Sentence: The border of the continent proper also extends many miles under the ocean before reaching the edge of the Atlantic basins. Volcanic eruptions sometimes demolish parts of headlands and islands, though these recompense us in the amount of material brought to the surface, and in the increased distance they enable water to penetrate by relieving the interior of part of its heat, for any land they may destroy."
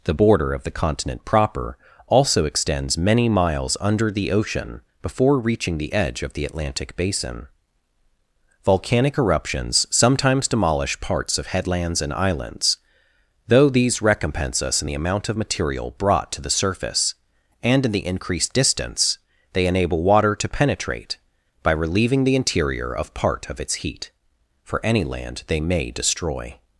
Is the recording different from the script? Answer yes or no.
yes